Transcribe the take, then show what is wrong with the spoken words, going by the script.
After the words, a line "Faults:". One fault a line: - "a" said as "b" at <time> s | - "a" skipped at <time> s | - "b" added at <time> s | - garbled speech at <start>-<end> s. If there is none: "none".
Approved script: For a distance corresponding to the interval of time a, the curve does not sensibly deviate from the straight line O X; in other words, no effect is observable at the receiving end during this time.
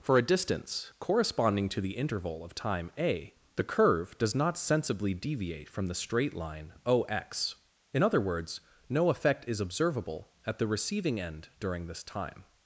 For a distance corresponding to the interval of time a, the curve does not sensibly deviate from the straight line O X; in other words, no effect is observable at the receiving end during this time.
Faults:
none